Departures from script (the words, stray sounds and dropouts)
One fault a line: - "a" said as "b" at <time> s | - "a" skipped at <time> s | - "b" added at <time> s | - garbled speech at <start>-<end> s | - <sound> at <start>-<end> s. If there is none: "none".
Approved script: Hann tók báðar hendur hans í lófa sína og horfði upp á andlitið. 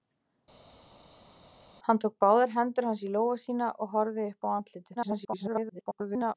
- garbled speech at 5.0-6.3 s